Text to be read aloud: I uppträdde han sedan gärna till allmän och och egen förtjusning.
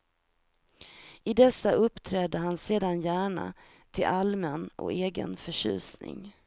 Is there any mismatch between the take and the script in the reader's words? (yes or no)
yes